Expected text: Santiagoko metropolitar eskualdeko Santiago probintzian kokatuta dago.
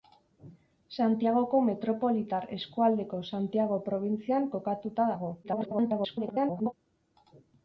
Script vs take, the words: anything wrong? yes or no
yes